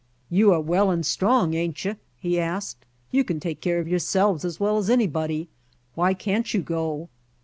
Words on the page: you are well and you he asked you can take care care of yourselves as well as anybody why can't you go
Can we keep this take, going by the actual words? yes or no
no